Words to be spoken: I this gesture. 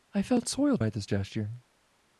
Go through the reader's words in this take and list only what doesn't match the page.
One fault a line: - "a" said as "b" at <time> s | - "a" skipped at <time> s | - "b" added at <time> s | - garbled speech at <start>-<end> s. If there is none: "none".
- "felt soiled by" added at 0.2 s